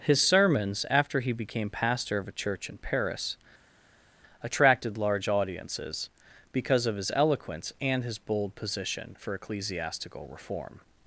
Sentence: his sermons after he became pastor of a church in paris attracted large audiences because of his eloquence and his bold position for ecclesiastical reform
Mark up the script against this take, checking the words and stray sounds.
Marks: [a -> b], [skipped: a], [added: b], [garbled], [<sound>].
his sermons after he became pastor of a church in paris attracted large audiences because of his eloquence and his bold position for ecclesiastical reform